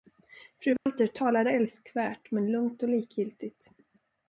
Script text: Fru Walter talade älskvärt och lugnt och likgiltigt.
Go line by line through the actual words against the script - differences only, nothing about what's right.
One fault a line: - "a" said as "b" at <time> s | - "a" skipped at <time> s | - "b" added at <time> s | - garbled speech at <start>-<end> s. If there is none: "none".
- "och" said as "men" at 2.3 s